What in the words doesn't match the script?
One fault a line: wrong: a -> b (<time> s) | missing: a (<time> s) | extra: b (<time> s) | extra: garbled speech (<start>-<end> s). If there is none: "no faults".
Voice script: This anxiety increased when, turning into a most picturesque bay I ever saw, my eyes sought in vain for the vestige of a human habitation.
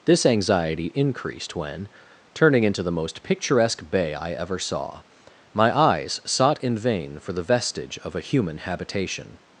wrong: a -> the (2.8 s)